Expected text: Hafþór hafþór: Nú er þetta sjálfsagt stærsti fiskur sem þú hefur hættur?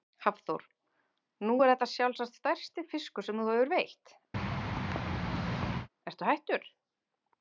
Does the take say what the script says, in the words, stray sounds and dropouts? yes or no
no